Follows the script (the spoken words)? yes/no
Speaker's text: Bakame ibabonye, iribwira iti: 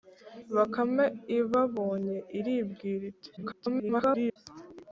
no